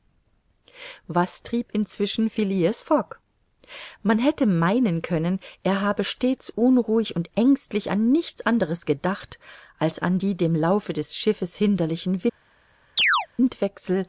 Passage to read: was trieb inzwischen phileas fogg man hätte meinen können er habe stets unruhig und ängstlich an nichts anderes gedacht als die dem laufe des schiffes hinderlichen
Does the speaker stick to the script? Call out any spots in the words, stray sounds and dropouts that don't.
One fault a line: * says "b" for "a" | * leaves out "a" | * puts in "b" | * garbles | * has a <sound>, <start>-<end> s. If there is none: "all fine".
* puts in "an"
* has a chirp, 13.0-13.3 s